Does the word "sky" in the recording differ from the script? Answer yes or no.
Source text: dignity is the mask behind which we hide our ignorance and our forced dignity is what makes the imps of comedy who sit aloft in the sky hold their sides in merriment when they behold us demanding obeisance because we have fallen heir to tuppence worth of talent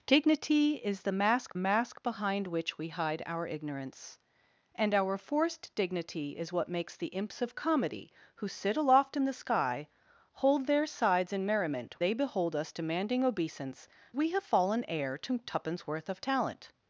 no